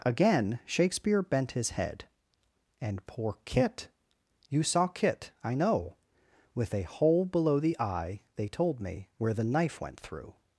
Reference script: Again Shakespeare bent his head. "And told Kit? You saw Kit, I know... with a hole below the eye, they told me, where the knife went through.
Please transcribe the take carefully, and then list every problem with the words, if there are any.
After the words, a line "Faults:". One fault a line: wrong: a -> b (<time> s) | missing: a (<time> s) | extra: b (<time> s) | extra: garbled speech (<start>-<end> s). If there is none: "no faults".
Again Shakespeare bent his head. "And poor Kit? You saw Kit, I know... with a hole below the eye, they told me, where the knife went through.
Faults:
wrong: told -> poor (3.0 s)